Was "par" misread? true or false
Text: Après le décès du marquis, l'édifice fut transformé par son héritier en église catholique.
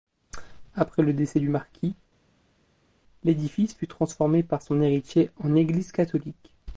false